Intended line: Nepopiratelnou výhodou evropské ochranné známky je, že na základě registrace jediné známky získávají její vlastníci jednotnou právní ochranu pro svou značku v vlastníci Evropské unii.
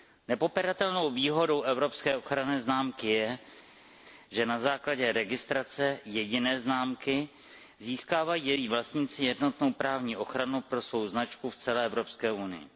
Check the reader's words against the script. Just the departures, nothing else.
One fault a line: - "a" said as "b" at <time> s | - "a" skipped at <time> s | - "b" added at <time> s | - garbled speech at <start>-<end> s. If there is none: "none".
- "vlastníci" said as "celé" at 11.6 s